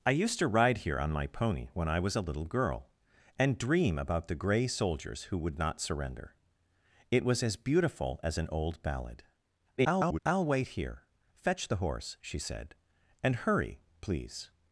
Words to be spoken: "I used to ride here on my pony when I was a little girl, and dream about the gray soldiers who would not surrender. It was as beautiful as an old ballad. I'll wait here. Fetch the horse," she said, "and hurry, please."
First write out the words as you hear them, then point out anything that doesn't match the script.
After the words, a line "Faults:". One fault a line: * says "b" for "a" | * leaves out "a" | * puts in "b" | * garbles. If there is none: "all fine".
"I used to ride here on my pony when I was a little girl, and dream about the gray soldiers who would not surrender. It was as beautiful as an old ballad. [garbled] I'll wait here. Fetch the horse," she said, "and hurry, please."
Faults:
* garbles